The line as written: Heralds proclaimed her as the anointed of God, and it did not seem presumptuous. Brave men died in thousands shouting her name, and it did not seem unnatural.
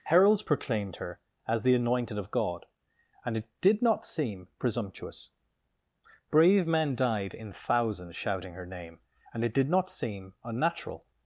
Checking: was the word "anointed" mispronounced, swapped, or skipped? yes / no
no